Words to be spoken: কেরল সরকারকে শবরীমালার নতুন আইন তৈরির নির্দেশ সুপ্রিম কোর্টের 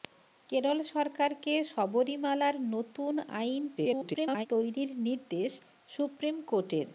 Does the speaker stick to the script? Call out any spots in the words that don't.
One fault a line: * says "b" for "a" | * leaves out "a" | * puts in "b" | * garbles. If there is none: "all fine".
* garbles